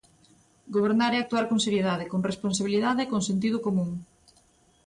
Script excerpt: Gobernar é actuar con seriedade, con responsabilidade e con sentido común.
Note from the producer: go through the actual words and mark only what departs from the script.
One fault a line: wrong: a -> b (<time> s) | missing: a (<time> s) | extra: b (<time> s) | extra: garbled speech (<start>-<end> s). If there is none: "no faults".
no faults